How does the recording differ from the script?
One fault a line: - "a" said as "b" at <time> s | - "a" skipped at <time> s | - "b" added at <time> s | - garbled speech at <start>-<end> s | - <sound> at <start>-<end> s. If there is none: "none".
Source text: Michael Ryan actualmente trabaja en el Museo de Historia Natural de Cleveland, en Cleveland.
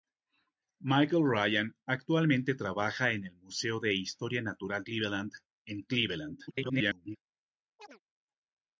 - "de" skipped at 4.8 s
- garbled speech at 6.5-7.2 s
- chirp at 7.8-8.0 s